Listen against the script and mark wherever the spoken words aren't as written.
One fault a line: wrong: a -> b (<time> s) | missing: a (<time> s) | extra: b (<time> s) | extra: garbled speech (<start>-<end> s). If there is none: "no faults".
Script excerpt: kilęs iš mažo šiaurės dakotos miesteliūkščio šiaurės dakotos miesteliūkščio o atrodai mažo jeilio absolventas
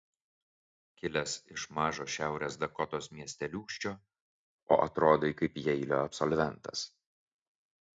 missing: šiaurės dakotos miesteliūkščio (4.0 s)
wrong: mažo -> kaip (5.4 s)